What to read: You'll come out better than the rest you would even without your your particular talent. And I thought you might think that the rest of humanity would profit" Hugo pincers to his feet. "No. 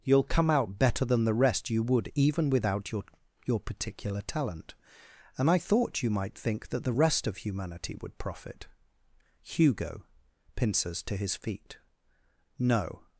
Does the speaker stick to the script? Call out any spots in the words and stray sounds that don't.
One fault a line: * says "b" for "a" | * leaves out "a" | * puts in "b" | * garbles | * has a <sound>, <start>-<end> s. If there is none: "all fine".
all fine